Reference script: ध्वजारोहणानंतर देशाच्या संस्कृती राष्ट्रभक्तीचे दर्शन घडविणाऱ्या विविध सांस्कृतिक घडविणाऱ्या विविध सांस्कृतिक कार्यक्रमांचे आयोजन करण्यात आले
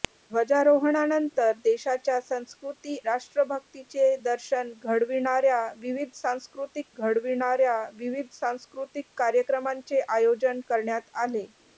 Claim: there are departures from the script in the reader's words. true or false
false